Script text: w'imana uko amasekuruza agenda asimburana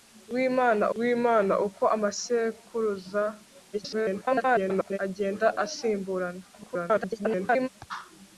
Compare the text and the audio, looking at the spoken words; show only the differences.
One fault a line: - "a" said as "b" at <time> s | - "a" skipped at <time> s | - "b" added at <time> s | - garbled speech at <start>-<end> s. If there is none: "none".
- "w'imana" added at 1.0 s
- garbled speech at 3.7-5.0 s
- garbled speech at 6.5-7.7 s